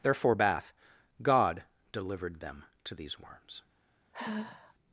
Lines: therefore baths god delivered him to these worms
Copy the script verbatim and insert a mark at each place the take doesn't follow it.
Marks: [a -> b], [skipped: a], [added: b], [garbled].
therefore [baths -> bath] god delivered [him -> them] to these worms